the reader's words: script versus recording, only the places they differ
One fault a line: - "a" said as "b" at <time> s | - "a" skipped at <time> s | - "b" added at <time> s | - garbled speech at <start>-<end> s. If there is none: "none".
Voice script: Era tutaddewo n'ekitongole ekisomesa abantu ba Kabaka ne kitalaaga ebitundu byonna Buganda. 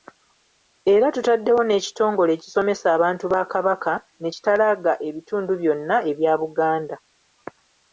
- "ebya" added at 6.1 s